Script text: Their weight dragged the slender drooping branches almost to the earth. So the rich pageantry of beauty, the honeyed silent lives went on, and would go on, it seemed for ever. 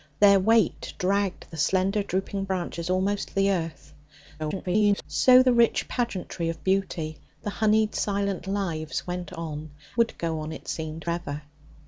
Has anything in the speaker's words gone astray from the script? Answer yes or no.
yes